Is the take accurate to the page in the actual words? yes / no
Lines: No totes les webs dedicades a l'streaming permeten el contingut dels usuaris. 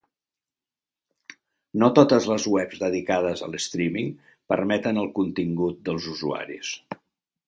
yes